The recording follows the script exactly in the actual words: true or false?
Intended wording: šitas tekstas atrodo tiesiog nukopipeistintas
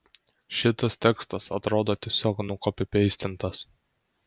true